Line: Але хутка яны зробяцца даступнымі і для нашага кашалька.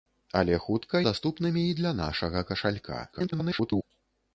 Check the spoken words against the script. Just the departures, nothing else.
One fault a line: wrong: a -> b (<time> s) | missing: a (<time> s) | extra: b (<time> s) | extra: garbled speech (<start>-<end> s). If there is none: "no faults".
missing: яны зробяцца (1.0 s)
extra: garbled speech (3.1-3.8 s)